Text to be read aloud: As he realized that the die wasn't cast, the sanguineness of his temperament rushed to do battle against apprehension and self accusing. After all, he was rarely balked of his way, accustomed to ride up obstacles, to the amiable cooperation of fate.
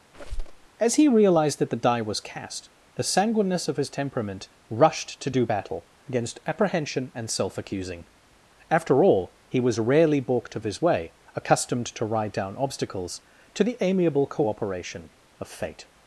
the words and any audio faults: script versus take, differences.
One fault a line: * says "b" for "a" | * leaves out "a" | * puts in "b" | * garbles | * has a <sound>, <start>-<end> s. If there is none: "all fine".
* has a squeak, 0.1-0.7 s
* says "was" for "wasn't"
* says "down" for "up"